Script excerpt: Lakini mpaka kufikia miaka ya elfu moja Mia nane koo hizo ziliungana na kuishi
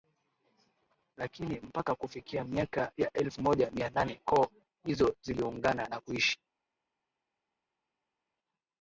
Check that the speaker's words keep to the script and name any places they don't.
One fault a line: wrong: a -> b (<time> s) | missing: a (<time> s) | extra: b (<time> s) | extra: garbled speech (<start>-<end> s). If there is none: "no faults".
no faults